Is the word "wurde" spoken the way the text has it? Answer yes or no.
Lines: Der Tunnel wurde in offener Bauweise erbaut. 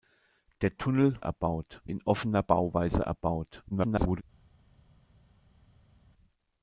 no